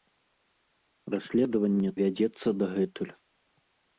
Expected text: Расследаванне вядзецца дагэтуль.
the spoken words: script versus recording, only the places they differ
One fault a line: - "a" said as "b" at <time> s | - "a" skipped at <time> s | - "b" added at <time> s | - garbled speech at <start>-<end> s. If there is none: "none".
none